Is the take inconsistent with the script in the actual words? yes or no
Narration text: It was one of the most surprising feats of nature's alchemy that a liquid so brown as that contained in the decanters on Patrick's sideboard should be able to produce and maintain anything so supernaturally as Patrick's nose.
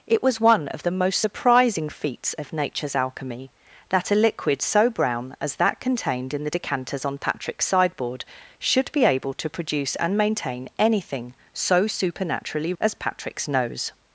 no